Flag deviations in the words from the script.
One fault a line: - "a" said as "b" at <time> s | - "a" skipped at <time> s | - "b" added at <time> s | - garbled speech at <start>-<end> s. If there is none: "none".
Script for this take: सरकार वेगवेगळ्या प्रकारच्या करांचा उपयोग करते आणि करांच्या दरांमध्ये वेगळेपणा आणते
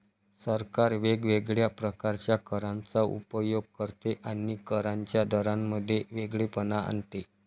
none